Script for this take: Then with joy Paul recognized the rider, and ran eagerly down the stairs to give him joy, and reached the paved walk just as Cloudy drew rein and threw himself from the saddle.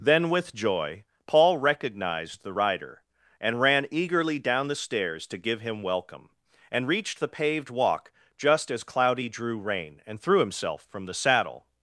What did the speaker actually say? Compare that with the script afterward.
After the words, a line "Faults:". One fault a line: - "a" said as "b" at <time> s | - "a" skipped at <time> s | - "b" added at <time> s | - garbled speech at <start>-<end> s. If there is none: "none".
Then with joy Paul recognized the rider, and ran eagerly down the stairs to give him welcome, and reached the paved walk just as Cloudy drew rein and threw himself from the saddle.
Faults:
- "joy" said as "welcome" at 5.8 s